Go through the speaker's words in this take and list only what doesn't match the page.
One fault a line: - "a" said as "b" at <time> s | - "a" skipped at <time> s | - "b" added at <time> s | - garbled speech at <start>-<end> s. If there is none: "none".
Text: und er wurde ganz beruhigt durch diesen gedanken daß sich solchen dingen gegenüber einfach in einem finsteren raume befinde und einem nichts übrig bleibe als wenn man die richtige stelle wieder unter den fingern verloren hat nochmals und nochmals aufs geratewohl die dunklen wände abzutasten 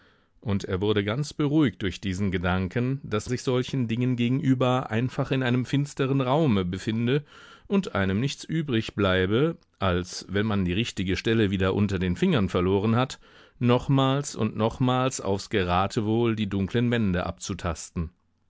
none